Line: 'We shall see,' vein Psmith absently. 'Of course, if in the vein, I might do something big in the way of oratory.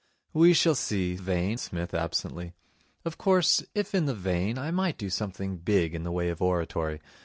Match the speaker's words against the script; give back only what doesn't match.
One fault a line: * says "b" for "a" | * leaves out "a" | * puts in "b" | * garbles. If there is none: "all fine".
all fine